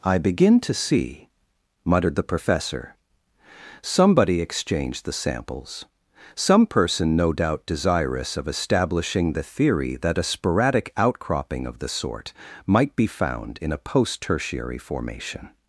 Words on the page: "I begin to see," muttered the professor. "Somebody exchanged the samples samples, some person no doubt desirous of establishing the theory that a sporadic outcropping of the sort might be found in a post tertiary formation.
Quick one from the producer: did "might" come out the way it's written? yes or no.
yes